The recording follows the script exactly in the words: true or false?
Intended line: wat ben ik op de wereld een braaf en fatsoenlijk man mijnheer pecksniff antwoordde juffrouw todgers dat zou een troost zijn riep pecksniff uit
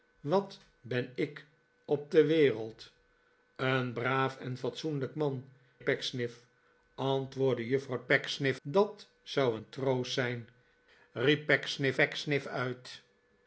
false